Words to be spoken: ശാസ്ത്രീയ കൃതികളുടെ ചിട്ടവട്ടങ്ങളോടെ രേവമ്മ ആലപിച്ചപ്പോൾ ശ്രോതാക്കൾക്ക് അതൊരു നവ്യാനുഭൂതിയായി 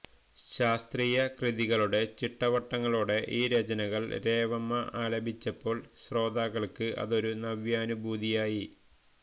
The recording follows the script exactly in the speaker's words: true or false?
false